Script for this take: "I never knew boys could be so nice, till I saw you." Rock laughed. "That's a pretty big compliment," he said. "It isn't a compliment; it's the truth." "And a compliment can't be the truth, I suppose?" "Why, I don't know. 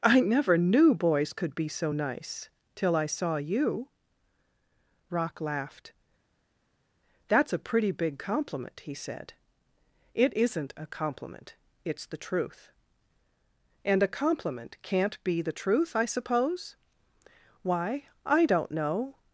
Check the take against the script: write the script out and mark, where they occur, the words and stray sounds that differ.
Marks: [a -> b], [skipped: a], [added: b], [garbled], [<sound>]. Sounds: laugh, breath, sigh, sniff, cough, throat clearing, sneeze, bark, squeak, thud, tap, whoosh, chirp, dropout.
"I never knew boys could be so nice, till I saw you." Rock laughed. "That's a pretty big compliment," he said. "It isn't a compliment; it's the truth." "And a compliment can't be the truth, I suppose?" "Why, I don't know.